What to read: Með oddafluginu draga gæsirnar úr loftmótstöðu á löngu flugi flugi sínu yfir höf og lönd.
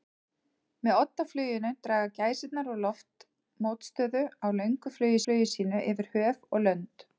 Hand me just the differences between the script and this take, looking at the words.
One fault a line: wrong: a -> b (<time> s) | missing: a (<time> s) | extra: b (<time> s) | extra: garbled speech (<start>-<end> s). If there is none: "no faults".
no faults